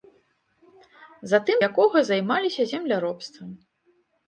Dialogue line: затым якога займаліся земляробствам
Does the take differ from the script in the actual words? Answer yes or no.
no